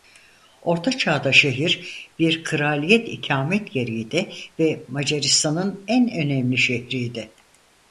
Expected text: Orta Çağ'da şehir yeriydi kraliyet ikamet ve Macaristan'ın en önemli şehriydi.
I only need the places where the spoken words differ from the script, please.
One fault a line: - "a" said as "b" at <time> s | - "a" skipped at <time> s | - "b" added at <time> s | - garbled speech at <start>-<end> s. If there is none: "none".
- "yeriydi" said as "bir" at 2.2 s
- "yeriydi" added at 3.8 s